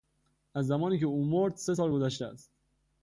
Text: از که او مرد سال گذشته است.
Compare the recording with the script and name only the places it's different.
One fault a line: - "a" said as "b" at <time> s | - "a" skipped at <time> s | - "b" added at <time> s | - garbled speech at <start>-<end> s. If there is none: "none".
- "زمانی" added at 0.7 s
- "سه" added at 1.5 s